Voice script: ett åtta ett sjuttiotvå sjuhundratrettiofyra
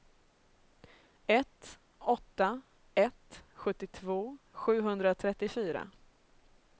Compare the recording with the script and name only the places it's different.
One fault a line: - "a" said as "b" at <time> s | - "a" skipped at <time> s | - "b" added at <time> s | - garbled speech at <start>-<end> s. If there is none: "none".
none